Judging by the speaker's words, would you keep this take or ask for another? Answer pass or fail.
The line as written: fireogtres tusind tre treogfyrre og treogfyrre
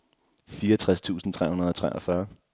fail